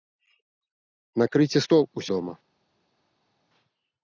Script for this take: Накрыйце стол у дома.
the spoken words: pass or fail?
pass